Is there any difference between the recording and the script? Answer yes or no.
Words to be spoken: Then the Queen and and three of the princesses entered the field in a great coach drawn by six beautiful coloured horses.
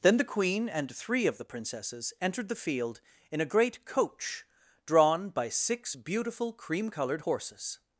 yes